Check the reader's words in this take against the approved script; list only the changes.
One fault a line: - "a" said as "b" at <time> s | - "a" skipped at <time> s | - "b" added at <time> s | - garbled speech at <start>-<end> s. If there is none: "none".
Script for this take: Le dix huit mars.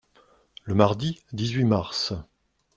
- "mardi" added at 0.7 s